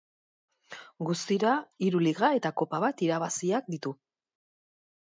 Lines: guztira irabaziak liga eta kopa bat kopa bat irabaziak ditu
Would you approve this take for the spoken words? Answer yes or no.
no